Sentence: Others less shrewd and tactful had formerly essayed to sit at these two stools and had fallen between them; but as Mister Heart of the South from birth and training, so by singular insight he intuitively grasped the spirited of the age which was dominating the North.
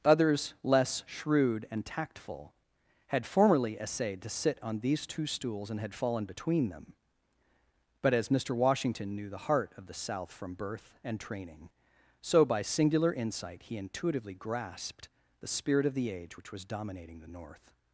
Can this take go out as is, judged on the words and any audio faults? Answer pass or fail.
fail